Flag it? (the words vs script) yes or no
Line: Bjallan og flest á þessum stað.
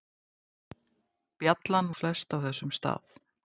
no